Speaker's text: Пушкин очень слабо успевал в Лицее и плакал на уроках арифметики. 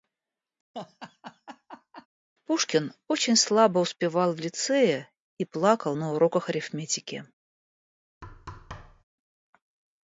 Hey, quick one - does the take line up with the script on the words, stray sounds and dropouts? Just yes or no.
no